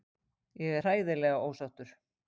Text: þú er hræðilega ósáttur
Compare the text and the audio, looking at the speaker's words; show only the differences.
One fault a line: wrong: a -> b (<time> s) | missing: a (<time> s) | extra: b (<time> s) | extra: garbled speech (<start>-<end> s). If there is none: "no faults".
wrong: þú -> ég (0.6 s)